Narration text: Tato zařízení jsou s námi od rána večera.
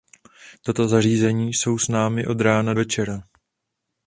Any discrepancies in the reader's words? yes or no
no